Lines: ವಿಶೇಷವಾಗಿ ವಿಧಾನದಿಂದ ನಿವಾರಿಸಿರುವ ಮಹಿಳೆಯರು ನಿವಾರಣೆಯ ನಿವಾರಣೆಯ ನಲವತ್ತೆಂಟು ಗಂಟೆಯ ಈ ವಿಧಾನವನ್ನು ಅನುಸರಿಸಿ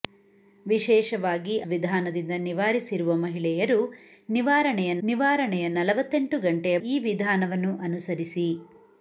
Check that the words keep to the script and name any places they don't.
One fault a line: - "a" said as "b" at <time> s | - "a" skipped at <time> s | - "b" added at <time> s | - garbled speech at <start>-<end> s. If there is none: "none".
none